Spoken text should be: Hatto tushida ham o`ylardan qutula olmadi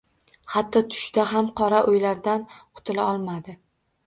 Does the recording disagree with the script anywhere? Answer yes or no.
yes